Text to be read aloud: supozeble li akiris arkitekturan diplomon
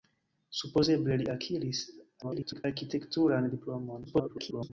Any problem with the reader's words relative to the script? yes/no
yes